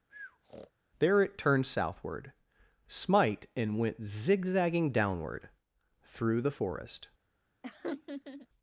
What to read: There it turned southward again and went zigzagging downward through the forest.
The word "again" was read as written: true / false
false